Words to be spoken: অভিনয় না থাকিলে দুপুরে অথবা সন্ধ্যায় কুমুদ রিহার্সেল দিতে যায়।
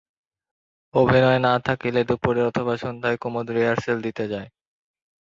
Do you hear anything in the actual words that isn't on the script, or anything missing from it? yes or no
no